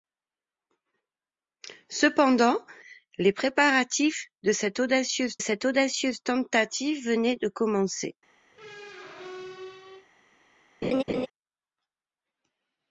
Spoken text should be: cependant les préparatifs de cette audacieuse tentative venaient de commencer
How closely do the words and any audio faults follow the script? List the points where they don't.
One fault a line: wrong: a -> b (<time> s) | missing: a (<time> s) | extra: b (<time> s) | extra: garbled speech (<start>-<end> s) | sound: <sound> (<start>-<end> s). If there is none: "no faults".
extra: cette audacieuse (5.4 s)
sound: squeak (8.5-10.1 s)
sound: laugh (10.8-11.3 s)